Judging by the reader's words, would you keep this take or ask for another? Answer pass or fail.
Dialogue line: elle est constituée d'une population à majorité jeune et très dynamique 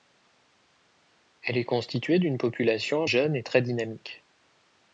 fail